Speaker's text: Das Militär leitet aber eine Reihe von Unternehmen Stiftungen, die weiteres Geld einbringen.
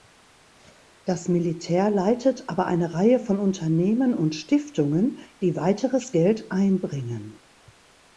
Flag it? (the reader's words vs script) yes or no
yes